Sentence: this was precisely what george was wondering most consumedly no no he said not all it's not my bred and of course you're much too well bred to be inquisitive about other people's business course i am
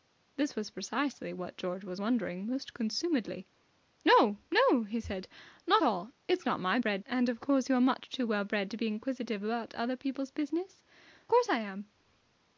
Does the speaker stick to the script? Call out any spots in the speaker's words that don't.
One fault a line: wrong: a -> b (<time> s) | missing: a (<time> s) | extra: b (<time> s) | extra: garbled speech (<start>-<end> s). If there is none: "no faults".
no faults